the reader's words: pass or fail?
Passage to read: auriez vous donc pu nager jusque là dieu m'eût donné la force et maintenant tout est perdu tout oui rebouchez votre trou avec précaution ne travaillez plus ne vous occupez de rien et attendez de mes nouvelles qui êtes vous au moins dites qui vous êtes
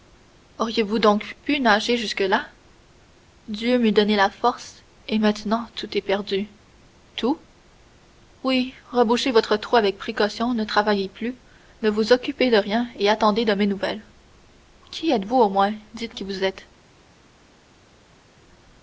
pass